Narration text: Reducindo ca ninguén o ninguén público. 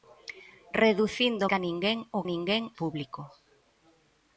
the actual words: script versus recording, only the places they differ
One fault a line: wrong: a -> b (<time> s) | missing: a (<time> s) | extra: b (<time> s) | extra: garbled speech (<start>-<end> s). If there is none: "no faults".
no faults